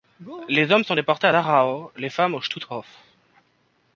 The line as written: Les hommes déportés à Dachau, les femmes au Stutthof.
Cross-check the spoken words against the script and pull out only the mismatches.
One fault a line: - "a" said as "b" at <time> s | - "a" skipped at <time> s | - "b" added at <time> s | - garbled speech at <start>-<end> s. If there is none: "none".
- "sont" added at 0.8 s